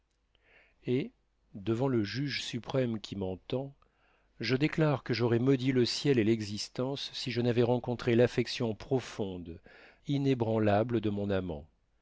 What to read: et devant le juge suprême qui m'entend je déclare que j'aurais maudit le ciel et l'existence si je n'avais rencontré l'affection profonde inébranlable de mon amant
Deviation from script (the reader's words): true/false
false